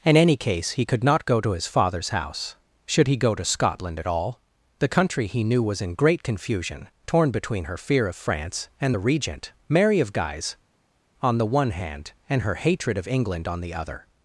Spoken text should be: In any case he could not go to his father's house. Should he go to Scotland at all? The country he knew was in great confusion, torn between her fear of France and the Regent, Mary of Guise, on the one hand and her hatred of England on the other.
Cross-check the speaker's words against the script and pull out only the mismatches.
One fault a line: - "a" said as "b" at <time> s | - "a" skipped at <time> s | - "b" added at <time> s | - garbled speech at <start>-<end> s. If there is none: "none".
none